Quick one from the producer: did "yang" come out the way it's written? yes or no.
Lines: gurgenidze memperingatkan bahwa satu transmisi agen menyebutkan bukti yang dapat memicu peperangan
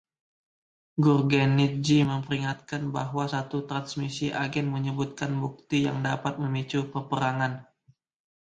yes